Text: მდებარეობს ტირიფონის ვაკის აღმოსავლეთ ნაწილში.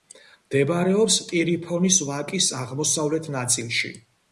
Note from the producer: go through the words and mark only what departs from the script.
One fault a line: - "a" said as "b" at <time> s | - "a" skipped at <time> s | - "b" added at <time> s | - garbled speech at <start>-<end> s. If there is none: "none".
none